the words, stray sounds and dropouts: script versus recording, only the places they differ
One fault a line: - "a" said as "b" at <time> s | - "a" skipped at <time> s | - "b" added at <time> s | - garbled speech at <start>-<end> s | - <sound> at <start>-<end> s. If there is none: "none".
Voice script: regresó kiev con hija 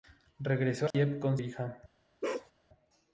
- dropout at 0.9-0.9 s
- bark at 2.2-2.5 s